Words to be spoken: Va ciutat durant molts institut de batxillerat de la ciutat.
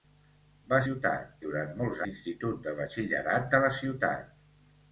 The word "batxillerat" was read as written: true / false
true